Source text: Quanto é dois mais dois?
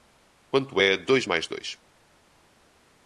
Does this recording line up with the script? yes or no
yes